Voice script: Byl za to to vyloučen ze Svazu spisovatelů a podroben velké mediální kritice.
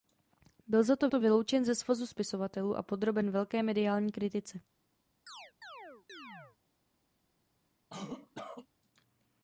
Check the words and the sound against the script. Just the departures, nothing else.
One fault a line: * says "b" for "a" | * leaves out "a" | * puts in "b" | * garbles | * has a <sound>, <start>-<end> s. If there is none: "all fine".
* has a chirp, 5.3-6.6 s
* has a cough, 7.9-8.7 s